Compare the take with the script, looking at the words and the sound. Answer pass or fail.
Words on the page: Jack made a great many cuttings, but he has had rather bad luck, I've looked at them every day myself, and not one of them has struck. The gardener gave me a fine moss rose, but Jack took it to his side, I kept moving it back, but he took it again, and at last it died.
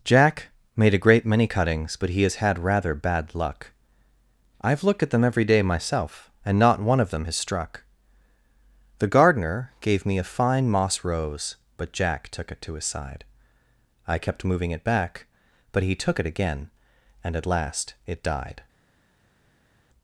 pass